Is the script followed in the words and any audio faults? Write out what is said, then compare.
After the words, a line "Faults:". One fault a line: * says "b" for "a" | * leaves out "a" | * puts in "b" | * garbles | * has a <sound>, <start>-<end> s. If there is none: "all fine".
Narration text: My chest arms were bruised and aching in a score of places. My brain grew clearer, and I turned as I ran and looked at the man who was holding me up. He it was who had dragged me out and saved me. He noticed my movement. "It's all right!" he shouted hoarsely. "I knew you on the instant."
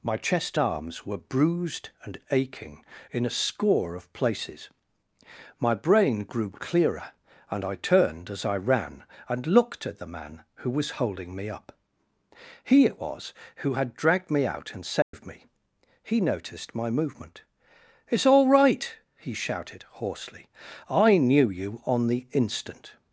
My chest arms were bruised and aching in a score of places. My brain grew clearer, and I turned as I ran and looked at the man who was holding me up. He it was who had dragged me out and saved me. He noticed my movement. "It's all right!" he shouted hoarsely. "I knew you on the instant."
Faults:
* has a dropout, 15.0-15.1 s